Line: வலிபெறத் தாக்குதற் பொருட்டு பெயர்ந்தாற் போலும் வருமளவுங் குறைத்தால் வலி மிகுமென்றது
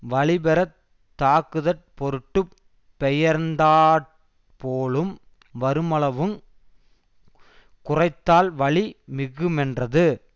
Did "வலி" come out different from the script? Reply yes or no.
no